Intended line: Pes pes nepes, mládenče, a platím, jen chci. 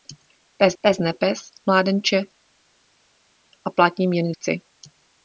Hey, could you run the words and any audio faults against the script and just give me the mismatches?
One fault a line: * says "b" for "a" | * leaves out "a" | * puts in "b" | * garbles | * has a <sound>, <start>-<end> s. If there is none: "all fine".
all fine